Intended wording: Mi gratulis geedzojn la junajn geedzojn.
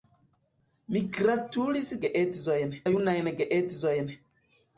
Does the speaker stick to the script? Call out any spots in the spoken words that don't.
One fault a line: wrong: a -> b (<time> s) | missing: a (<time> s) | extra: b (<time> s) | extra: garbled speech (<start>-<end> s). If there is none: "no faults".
no faults